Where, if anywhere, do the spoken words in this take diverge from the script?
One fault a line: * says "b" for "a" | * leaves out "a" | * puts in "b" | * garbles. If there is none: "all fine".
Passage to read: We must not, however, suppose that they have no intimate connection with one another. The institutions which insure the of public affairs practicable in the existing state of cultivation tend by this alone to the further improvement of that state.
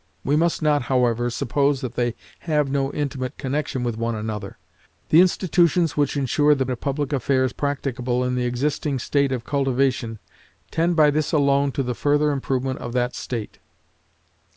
all fine